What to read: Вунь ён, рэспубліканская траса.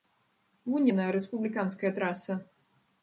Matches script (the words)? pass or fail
fail